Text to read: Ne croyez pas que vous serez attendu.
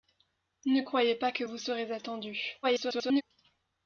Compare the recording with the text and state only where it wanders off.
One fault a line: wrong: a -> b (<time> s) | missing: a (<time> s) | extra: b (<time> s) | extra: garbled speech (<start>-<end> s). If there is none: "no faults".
extra: garbled speech (2.6-3.2 s)